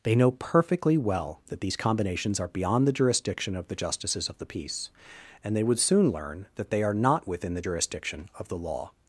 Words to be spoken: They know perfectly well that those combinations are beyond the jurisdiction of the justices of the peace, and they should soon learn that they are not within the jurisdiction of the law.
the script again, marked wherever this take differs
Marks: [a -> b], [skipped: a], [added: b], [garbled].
They know perfectly well that [those -> these] combinations are beyond the jurisdiction of the justices of the peace, and they [should -> would] soon learn that they are not within the jurisdiction of the law.